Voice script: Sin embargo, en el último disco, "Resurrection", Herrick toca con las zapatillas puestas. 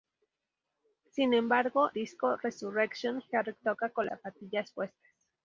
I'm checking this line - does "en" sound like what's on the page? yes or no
no